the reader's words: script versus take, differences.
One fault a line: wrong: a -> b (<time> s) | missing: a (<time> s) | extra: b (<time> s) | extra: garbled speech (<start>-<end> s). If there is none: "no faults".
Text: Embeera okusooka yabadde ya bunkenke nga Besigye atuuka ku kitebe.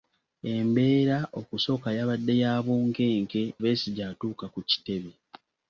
missing: nga (3.4 s)